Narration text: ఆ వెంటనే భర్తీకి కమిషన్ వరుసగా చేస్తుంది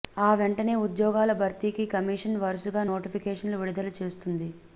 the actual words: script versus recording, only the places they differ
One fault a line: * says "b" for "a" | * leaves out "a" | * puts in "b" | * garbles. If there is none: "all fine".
* puts in "ఉద్యోగాల"
* puts in "నోటిఫికేషన్లు విడుదల"